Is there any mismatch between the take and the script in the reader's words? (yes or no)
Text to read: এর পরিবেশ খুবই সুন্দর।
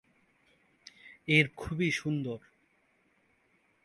yes